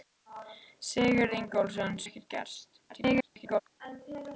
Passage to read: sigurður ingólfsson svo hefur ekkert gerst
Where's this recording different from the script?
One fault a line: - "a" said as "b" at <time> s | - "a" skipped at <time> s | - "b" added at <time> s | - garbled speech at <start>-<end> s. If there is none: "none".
- "svo hefur" skipped at 2.0 s
- garbled speech at 2.9-3.6 s